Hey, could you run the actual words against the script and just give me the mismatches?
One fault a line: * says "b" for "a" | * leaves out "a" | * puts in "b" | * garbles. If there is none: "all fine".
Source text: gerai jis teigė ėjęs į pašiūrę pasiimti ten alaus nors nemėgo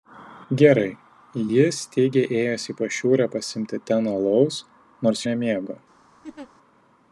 all fine